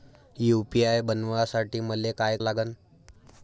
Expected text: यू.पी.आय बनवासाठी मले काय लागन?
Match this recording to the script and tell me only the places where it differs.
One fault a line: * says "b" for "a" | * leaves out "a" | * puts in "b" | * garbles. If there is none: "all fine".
all fine